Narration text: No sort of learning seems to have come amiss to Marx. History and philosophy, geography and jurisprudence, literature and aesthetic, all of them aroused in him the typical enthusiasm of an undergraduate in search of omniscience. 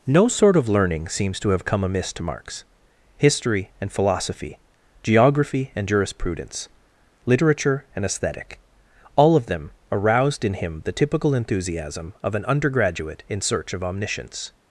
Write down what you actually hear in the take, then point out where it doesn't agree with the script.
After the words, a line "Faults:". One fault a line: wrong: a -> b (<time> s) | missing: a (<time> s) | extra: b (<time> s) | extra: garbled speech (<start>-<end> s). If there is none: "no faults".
No sort of learning seems to have come amiss to Marx. History and philosophy, geography and jurisprudence, literature and aesthetic, all of them aroused in him the typical enthusiasm of an undergraduate in search of omniscience.
Faults:
no faults